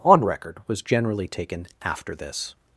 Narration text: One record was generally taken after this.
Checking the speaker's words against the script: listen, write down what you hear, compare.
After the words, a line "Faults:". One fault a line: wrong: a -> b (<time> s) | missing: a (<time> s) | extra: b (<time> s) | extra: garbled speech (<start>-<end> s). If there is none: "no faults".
On record was generally taken after this.
Faults:
wrong: One -> On (0.0 s)